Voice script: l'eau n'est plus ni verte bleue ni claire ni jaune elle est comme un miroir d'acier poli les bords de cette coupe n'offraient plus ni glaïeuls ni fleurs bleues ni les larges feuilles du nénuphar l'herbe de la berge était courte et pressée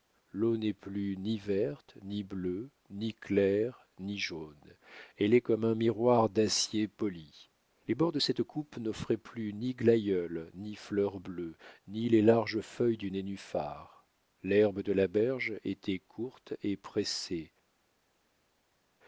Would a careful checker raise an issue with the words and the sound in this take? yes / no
yes